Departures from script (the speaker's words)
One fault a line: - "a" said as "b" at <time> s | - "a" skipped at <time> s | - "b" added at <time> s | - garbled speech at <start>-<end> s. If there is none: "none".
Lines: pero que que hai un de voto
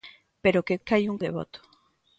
none